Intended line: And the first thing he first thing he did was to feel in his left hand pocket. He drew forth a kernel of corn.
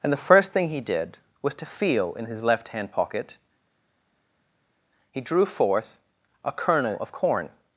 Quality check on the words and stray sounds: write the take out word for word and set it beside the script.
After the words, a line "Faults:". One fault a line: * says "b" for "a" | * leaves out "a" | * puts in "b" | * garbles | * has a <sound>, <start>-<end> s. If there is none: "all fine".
And the first thing he did was to feel in his left hand pocket. He drew forth a kernel of corn.
Faults:
* leaves out "first thing he"